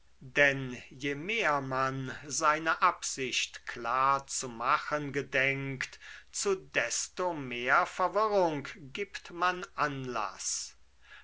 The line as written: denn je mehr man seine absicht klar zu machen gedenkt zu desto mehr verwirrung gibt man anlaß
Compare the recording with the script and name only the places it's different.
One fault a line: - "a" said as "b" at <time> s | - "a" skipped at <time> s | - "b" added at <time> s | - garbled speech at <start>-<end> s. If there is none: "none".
none